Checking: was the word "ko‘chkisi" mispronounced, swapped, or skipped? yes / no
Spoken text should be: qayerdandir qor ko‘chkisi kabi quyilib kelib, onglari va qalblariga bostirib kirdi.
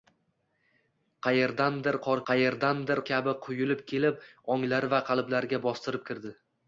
yes